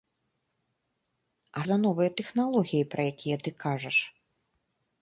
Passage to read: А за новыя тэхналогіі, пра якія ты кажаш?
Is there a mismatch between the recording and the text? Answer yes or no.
no